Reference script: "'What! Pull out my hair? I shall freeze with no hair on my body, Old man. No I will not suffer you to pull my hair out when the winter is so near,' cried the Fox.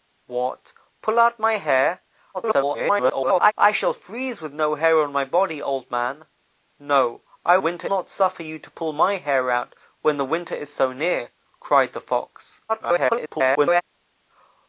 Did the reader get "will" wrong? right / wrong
wrong